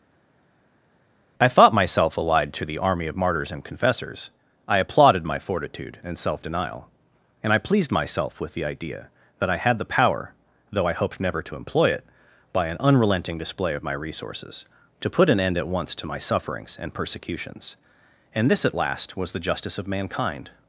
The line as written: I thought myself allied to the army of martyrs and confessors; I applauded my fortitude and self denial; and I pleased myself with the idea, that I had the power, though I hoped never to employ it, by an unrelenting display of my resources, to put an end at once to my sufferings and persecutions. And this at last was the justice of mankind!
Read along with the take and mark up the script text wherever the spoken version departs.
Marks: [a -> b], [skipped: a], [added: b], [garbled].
I thought myself allied to the army of martyrs and confessors; I applauded my fortitude and self denial; and I pleased myself with the idea, that I had the power, though I hoped never to employ it, by an unrelenting display of my resources, to put an end at once to my sufferings and persecutions. And this at last was the justice of mankind!